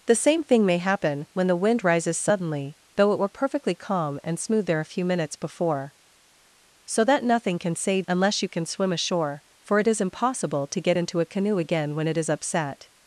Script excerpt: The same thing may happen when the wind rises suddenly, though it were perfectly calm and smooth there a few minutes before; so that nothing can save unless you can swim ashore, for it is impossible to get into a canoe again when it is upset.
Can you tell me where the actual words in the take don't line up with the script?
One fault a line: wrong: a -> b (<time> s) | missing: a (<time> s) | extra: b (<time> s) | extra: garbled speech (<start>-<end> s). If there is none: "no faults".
no faults